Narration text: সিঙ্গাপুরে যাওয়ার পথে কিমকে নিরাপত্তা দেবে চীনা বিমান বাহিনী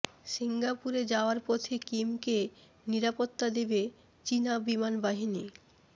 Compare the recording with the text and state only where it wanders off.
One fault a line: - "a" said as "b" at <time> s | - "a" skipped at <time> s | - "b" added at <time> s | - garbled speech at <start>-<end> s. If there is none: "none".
none